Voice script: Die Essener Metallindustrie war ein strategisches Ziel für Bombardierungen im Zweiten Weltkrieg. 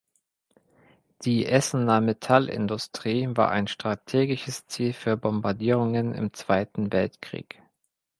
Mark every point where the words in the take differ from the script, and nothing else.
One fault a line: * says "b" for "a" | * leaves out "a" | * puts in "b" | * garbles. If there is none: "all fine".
all fine